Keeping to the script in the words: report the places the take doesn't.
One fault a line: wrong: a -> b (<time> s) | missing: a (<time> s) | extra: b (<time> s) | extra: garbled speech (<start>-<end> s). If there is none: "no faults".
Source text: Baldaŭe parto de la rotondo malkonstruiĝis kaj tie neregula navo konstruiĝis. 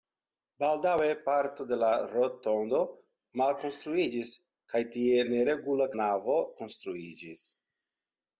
no faults